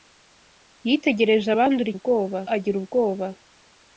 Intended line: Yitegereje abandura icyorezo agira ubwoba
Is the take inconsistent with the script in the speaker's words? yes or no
yes